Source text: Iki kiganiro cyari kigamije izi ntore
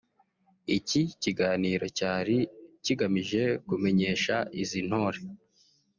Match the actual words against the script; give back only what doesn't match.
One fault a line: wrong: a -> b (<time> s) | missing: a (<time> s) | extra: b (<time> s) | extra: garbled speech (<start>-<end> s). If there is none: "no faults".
extra: kumenyesha (3.7 s)